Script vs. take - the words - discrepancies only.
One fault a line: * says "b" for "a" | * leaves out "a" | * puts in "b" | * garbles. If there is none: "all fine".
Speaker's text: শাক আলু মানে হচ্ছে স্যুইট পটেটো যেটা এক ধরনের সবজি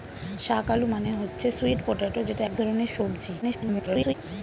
* garbles